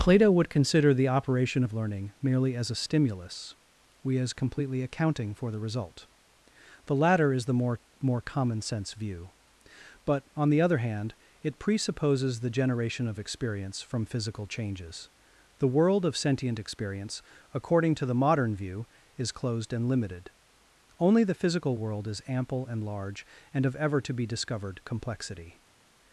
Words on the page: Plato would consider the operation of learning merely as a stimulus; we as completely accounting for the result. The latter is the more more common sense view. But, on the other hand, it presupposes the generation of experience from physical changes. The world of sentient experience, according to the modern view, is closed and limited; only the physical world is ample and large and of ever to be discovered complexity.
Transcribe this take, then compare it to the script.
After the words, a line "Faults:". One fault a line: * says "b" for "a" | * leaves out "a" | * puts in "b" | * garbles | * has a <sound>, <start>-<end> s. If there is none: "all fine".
Plato would consider the operation of learning merely as a stimulus; we as completely accounting for the result. The latter is the more more common sense view. But, on the other hand, it presupposes the generation of experience from physical changes. The world of sentient experience, according to the modern view, is closed and limited; only the physical world is ample and large and of ever to be discovered complexity.
Faults:
all fine